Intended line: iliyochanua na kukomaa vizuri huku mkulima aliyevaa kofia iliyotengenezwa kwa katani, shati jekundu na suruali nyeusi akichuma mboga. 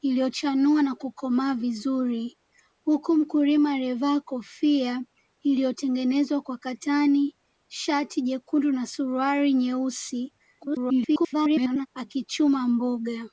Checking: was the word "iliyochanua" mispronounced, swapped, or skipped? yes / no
no